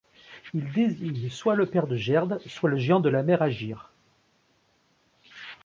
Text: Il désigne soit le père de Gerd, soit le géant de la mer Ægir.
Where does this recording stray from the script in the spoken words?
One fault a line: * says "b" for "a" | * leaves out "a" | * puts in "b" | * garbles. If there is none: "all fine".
all fine